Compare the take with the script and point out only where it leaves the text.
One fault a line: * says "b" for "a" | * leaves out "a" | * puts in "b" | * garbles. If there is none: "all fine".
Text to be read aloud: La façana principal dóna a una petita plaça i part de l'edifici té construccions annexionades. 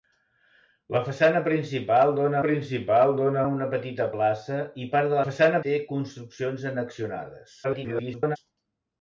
* puts in "principal dóna"
* says "façana" for "l'edifici"
* garbles